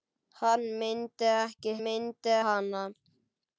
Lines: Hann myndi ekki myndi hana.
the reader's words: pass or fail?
pass